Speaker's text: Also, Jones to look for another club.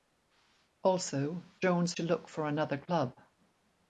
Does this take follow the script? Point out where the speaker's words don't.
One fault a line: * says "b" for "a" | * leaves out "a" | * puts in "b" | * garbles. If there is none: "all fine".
all fine